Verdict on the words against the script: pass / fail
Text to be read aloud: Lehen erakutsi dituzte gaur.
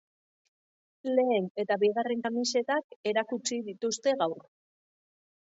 fail